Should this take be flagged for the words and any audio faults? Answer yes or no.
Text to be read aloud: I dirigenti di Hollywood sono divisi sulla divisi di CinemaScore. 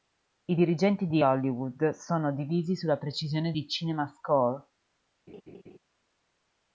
yes